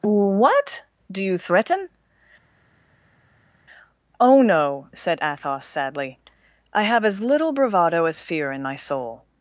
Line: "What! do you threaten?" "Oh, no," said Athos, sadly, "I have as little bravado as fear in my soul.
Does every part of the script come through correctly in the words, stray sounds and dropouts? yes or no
yes